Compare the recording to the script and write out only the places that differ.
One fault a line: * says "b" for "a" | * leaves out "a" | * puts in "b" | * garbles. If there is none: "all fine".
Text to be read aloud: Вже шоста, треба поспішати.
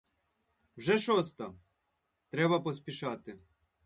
all fine